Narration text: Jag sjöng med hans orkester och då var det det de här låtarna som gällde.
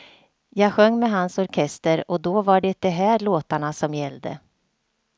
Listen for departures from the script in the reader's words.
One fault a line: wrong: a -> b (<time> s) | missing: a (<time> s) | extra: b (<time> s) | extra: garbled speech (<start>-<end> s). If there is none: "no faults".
missing: det (2.8 s)